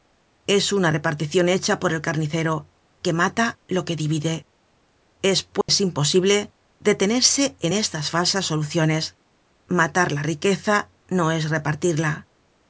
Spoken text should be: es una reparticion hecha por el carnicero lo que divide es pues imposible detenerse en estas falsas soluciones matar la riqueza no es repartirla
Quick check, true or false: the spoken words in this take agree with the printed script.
false